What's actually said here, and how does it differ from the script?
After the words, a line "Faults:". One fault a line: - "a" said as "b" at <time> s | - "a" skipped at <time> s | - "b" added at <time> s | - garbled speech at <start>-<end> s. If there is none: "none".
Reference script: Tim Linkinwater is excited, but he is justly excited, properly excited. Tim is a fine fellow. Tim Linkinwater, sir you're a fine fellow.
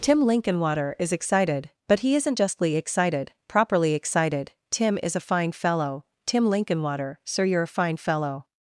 Tim Linkinwater is excited, but he isn't justly excited, properly excited. Tim is a fine fellow. Tim Linkinwater, sir you're a fine fellow.
Faults:
- "is" said as "isn't" at 2.1 s